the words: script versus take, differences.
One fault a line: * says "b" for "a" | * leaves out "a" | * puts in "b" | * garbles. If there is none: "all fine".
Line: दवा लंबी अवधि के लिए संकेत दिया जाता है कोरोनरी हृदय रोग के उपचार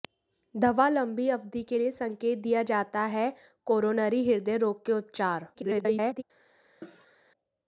* garbles